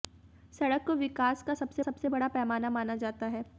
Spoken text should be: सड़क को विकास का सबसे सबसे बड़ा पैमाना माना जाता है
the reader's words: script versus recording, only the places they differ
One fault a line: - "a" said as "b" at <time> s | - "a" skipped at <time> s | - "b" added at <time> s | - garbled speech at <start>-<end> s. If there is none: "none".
none